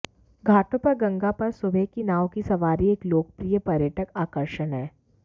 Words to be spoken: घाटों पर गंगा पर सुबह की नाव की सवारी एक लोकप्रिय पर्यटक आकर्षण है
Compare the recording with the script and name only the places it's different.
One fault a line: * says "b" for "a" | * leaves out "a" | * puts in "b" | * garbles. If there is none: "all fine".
all fine